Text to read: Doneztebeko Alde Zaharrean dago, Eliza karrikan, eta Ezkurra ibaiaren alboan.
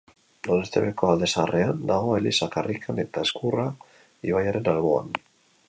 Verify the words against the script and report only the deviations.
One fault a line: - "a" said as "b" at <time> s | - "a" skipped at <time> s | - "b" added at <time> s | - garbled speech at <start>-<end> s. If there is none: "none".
none